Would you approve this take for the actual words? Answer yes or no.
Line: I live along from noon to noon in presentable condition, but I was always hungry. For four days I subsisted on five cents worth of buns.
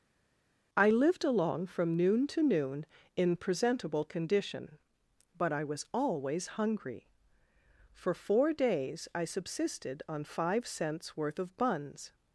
no